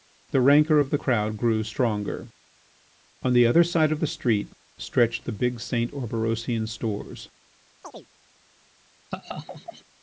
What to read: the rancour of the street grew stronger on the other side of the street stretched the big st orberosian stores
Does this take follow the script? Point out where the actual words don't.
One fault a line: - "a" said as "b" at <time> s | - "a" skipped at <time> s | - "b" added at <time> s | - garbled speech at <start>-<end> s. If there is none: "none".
- "street" said as "crowd" at 0.9 s